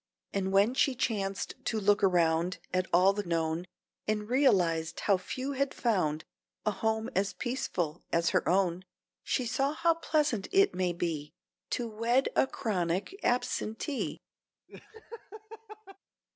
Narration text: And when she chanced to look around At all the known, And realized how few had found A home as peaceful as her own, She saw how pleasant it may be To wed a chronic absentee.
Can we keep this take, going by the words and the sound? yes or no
no